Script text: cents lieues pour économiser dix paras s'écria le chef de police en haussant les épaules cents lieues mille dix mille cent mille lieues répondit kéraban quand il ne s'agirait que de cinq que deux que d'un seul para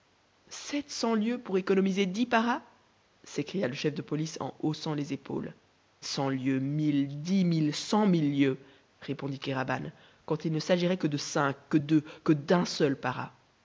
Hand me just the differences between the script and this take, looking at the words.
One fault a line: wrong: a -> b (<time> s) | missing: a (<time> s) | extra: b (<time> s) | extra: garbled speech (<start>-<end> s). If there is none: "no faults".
no faults